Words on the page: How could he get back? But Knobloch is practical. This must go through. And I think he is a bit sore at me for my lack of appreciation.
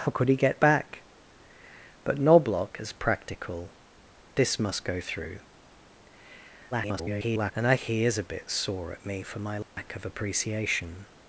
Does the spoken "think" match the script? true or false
false